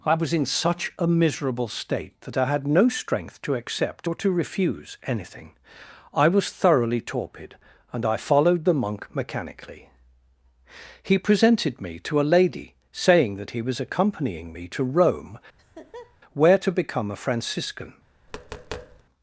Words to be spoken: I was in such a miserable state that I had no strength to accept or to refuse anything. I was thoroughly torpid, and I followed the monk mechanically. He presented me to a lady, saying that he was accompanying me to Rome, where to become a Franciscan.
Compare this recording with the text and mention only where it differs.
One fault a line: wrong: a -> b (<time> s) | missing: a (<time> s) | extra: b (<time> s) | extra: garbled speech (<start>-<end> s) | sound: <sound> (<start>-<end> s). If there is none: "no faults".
sound: laugh (15.6-16.2 s)
sound: tap (18.3-19.0 s)